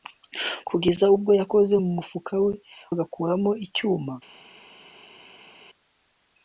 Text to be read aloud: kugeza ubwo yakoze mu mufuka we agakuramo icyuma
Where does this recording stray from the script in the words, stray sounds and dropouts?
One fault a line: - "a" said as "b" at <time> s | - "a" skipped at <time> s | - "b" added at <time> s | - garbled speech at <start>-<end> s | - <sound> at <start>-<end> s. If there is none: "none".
none